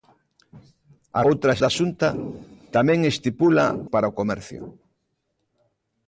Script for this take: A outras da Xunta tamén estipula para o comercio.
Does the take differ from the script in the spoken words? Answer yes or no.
no